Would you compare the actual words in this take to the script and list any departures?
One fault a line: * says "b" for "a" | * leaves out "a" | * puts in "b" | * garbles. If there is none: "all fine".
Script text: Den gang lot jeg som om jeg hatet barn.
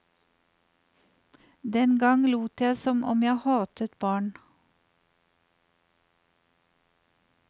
all fine